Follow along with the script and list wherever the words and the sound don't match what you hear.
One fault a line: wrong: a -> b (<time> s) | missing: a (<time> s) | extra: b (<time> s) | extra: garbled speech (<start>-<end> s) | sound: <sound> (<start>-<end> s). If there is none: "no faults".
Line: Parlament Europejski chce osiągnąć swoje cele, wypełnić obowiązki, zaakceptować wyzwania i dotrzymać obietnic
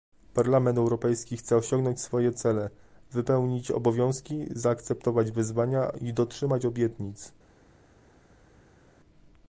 no faults